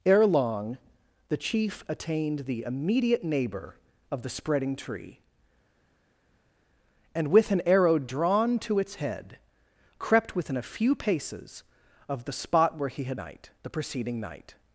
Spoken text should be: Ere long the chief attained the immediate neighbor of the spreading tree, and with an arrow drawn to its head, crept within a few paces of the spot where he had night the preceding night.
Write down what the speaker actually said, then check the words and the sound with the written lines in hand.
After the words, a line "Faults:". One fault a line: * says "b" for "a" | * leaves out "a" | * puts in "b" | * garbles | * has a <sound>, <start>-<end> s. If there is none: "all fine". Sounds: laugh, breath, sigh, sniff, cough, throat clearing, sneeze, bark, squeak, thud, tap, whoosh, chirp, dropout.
Ere long the chief attained the immediate neighbor of the spreading tree, and with an arrow drawn to its head, crept within a few paces of the spot where he had night the preceding night.
Faults:
all fine